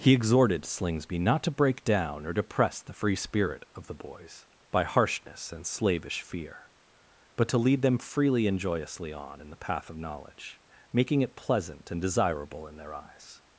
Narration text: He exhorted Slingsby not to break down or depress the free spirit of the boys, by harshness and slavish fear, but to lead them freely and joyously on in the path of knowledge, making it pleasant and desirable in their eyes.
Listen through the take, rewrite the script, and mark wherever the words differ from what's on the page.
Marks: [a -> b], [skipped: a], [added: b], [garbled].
He exhorted Slingsby not to break down or depress the free spirit of the boys, by harshness and slavish fear, but to lead them freely and joyously on in the path of knowledge, making it pleasant and desirable in their eyes.